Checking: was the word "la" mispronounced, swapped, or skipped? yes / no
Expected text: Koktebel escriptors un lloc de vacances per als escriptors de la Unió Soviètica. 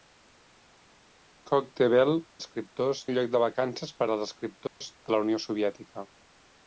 no